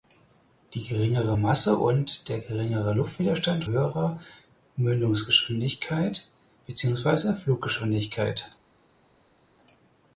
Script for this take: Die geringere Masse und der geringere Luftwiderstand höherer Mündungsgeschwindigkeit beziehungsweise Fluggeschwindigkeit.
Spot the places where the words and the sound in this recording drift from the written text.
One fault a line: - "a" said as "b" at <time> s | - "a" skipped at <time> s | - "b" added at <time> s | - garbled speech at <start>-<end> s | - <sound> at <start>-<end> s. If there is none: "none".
none